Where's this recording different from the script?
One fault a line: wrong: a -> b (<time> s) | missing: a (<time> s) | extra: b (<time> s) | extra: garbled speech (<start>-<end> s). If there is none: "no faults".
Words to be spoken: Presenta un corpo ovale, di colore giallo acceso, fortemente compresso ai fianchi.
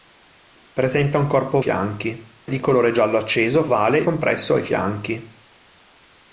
wrong: ovale -> fianchi (1.6 s)
wrong: fortemente -> ovale (3.6 s)